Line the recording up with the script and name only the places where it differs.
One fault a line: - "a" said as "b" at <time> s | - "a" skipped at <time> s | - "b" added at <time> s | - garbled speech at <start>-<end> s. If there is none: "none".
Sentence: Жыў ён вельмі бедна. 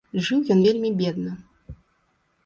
none